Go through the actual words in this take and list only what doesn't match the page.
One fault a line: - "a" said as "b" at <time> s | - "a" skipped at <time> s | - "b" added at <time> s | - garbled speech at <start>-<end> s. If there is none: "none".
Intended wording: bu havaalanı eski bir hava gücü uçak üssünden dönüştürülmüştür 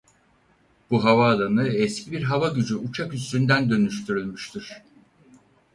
none